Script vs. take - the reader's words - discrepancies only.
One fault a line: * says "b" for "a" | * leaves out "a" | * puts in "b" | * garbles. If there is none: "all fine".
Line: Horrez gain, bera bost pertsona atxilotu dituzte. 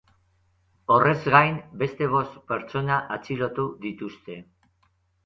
* says "beste" for "bera"